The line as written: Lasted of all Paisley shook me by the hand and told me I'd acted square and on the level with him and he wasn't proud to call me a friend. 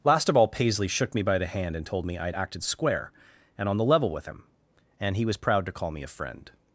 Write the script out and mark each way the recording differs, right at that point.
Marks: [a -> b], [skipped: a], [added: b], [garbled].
[Lasted -> Last] of all Paisley shook me by the hand and told me I'd acted square and on the level with him and he [wasn't -> was] proud to call me a friend.